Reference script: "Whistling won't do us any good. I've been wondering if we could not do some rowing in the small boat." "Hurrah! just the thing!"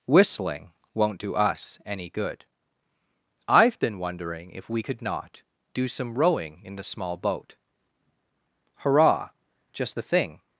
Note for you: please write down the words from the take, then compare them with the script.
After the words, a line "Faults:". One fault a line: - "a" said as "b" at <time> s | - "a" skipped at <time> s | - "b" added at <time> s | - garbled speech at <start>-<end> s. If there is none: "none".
"Whistling won't do us any good. I've been wondering if we could not do some rowing in the small boat." "Hurrah! just the thing!"
Faults:
none